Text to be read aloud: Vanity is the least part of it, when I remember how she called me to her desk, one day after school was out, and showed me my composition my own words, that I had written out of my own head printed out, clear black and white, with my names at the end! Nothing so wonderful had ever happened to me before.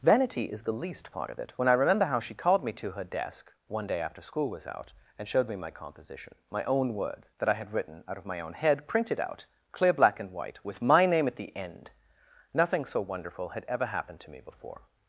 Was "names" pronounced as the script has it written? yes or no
no